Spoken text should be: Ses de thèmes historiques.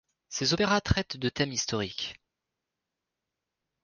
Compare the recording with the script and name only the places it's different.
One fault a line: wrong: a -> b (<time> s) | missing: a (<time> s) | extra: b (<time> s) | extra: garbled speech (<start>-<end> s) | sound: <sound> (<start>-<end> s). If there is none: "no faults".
extra: opéras traitent (0.5 s)